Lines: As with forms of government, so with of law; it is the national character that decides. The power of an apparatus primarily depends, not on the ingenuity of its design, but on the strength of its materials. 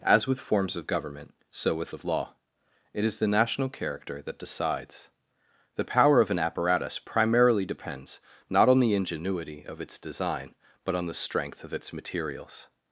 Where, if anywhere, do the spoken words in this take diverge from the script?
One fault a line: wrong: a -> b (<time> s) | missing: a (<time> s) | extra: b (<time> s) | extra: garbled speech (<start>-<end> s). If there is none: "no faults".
no faults